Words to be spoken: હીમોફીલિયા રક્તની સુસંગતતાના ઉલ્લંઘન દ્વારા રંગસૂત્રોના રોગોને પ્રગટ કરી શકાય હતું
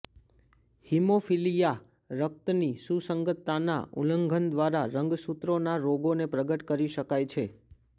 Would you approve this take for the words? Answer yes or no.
no